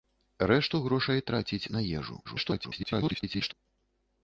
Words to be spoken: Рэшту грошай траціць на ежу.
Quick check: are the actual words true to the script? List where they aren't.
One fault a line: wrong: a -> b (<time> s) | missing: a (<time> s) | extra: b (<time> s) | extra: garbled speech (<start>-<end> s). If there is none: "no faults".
extra: garbled speech (2.2-3.5 s)